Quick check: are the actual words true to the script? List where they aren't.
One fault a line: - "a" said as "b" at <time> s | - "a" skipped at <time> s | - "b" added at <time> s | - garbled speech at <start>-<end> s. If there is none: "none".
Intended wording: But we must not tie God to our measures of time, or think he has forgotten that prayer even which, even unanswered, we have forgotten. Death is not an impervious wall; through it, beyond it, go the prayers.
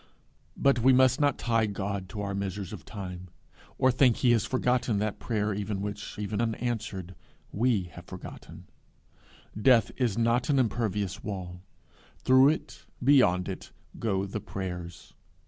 none